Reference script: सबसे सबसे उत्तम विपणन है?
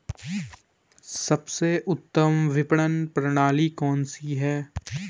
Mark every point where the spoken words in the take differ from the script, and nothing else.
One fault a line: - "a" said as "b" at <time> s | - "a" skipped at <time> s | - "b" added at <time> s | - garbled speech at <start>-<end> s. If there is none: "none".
- "सबसे" skipped at 1.7 s
- "प्रणाली कौन सी" added at 3.1 s